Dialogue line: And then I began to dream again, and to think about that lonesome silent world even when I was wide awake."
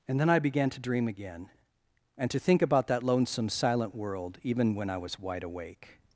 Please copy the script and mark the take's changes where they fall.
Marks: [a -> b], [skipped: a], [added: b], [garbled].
And then I began to dream again, and to think about that lonesome silent world even when I was wide awake."